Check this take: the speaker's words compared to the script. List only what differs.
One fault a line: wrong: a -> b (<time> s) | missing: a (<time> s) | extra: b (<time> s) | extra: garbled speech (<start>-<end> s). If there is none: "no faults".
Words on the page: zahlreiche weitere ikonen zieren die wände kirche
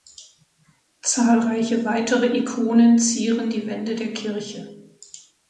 extra: der (4.0 s)